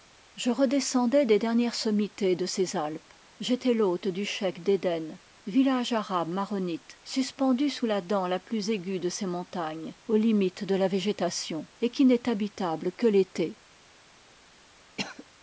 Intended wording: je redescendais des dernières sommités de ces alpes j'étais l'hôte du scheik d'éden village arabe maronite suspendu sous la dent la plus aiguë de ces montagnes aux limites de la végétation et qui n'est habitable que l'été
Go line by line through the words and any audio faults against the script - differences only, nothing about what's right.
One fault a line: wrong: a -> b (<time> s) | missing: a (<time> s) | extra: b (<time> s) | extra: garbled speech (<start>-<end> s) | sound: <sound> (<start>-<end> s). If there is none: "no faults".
sound: cough (15.0-15.3 s)